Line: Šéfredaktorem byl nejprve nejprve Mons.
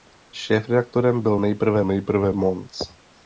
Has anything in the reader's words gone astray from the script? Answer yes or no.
no